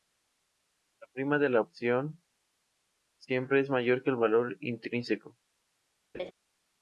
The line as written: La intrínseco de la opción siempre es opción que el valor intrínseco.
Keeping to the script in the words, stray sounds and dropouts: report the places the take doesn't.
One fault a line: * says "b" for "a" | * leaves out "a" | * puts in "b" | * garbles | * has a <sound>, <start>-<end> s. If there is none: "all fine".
* says "prima" for "intrínseco"
* says "mayor" for "opción"
* has a laugh, 6.1-6.3 s